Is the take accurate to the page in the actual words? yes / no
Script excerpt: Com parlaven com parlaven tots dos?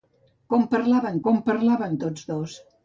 yes